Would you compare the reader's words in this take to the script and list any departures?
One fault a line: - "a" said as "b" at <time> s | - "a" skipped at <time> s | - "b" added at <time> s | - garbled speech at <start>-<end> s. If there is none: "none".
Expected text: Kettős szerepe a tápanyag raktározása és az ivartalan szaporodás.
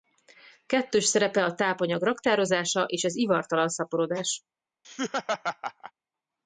none